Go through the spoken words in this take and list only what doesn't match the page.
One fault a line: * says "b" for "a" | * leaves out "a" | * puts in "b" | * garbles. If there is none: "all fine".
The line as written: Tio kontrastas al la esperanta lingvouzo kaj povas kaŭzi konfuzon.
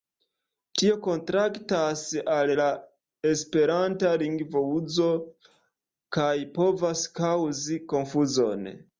all fine